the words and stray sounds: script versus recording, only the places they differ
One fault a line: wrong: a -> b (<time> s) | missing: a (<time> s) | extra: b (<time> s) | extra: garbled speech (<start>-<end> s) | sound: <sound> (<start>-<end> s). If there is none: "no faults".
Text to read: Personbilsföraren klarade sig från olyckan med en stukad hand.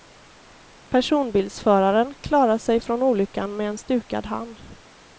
no faults